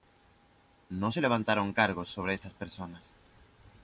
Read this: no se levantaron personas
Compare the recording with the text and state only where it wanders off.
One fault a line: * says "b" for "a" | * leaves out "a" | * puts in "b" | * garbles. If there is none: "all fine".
* puts in "cargos sobre estas"